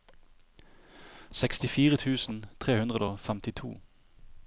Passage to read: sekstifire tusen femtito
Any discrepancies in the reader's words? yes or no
yes